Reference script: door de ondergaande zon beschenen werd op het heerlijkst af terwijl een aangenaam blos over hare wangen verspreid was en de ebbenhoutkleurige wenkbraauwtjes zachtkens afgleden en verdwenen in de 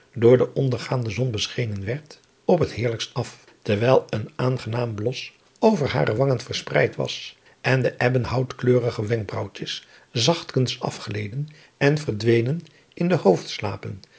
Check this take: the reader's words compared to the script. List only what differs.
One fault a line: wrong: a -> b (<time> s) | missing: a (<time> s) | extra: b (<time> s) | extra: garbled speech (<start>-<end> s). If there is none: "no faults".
no faults